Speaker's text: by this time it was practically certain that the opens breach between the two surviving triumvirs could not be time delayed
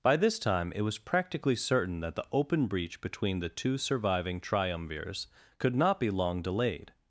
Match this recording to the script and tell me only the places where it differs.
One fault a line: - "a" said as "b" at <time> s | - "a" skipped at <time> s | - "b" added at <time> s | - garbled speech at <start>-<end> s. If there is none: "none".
- "opens" said as "open" at 2.3 s
- "time" said as "long" at 6.1 s